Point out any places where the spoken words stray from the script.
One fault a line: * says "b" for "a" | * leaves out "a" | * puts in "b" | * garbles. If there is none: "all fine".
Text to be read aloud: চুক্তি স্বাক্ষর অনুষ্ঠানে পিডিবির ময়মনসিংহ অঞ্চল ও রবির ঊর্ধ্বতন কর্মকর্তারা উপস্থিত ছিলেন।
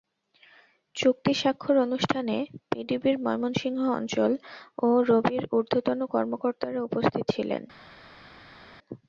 all fine